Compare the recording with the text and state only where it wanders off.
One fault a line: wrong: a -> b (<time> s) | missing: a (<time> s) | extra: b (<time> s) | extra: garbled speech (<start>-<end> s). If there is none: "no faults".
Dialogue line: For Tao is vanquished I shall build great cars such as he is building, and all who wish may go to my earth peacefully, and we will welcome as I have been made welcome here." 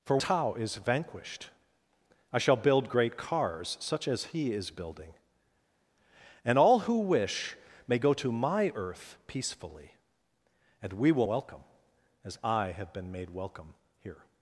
no faults